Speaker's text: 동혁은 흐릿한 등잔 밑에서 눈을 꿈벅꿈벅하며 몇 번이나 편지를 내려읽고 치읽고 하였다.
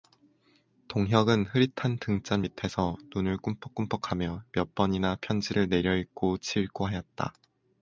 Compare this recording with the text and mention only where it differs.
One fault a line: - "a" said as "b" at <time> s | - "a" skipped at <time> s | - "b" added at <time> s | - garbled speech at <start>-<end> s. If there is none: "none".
none